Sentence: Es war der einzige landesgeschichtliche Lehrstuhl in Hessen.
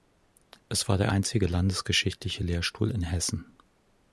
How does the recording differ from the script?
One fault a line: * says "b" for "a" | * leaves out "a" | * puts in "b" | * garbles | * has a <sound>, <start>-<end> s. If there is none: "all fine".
all fine